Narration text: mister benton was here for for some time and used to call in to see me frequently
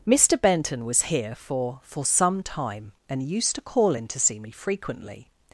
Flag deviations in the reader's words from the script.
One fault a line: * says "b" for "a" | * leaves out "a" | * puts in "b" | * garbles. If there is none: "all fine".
all fine